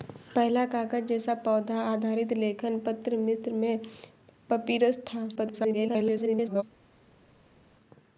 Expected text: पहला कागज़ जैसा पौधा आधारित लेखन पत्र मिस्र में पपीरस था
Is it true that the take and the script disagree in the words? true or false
true